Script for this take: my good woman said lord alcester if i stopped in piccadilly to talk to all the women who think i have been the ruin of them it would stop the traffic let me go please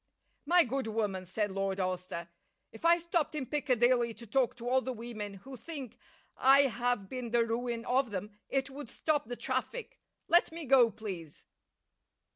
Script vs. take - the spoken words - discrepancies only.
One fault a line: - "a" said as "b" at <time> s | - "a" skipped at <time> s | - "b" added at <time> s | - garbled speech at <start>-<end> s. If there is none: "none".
none